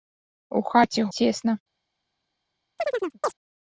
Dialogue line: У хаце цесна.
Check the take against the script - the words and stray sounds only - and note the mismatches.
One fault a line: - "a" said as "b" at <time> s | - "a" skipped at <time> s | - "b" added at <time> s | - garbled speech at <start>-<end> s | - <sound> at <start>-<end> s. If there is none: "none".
- chirp at 2.8-3.3 s